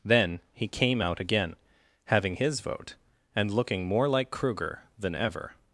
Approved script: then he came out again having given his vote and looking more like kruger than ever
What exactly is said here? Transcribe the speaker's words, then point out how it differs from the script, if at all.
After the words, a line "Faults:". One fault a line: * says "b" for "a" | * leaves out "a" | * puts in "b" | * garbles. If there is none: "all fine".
then he came out again having his vote and looking more like kruger than ever
Faults:
* leaves out "given"